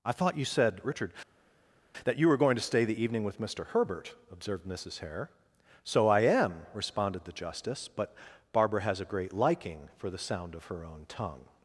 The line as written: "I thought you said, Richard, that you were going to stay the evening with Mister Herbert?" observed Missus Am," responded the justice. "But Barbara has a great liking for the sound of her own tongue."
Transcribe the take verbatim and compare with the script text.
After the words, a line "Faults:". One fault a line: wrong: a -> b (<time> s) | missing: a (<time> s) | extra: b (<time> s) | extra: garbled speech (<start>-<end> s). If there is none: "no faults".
"I thought you said, Richard, that you were going to stay the evening with Mister Herbert?" observed Missus Hare. "So I am," responded the justice. "But Barbara has a great liking for the sound of her own tongue."
Faults:
extra: Hare So I (5.0 s)